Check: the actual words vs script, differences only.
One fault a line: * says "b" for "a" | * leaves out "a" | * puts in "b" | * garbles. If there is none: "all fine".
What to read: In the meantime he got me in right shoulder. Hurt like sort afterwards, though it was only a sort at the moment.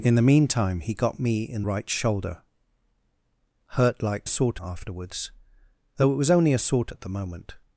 all fine